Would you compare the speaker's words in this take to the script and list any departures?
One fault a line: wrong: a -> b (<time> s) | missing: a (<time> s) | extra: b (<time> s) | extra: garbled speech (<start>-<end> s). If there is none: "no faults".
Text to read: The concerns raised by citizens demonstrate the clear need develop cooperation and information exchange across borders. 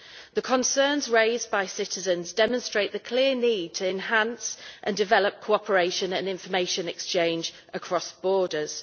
extra: to enhance and (3.8 s)